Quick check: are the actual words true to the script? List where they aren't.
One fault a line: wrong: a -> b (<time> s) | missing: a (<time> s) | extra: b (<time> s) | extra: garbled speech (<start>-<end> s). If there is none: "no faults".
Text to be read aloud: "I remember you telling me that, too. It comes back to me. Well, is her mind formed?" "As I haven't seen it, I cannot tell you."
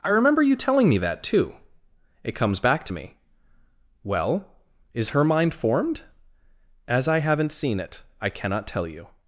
no faults